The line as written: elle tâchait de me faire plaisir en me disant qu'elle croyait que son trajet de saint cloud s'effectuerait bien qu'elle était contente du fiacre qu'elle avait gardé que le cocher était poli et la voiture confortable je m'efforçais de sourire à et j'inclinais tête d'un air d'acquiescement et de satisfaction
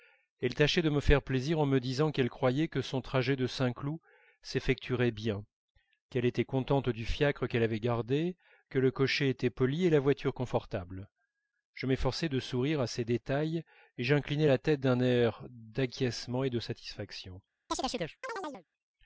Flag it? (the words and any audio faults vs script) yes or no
yes